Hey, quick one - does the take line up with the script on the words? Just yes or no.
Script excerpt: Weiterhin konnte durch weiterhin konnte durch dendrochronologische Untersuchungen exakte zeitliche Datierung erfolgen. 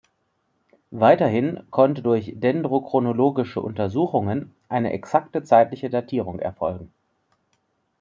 no